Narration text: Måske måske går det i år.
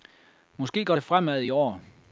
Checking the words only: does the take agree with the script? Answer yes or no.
no